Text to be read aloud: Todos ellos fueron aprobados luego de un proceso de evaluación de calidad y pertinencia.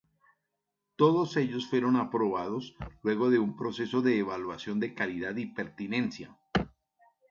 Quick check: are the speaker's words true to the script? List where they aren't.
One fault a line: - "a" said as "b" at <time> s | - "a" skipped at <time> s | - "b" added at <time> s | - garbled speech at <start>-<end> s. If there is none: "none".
none